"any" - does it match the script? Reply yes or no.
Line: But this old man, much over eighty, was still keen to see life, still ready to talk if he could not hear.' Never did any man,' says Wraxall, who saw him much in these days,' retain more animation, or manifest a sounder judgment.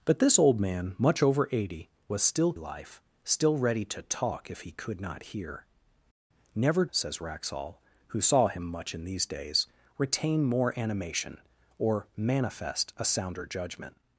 no